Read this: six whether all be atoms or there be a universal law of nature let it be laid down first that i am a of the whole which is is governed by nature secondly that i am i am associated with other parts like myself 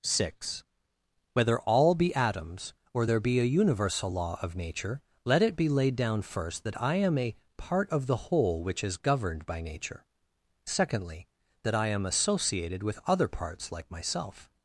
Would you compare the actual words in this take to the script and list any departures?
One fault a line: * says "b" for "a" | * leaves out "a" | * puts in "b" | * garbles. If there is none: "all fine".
* puts in "part"
* leaves out "is"
* leaves out "i am"